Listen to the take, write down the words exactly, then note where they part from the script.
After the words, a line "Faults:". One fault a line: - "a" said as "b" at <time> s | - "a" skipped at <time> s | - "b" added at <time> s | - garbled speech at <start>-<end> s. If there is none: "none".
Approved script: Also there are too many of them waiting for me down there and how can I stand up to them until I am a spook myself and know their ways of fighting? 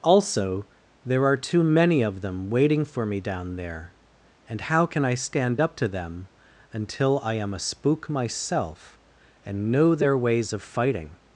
Also there are too many of them waiting for me down there and how can I stand up to them until I am a spook myself and know their ways of fighting?
Faults:
none